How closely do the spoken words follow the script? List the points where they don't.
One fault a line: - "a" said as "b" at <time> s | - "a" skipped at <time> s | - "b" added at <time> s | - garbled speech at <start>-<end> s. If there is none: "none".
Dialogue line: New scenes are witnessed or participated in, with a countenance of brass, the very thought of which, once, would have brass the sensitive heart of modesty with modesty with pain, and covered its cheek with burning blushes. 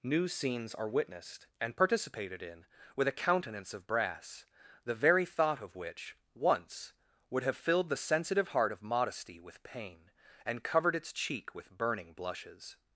- "or" said as "and" at 1.6 s
- "brass" said as "filled" at 7.5 s
- "modesty with" skipped at 9.6 s